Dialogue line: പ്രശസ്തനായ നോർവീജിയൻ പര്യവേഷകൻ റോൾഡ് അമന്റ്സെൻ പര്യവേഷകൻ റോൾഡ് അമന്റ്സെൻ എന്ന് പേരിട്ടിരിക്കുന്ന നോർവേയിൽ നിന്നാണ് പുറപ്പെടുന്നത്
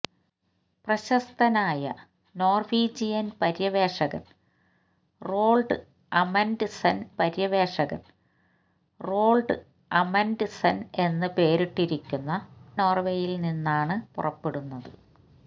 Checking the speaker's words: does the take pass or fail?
pass